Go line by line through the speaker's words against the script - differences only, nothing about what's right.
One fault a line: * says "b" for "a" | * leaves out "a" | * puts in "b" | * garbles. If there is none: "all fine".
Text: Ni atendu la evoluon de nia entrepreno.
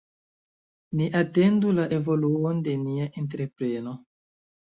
all fine